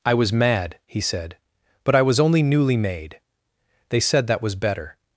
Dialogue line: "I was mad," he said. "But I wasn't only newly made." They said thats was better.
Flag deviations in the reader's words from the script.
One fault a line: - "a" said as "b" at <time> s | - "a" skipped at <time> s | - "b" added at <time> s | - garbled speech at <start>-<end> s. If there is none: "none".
- "wasn't" said as "was" at 2.0 s
- "thats" said as "that" at 4.3 s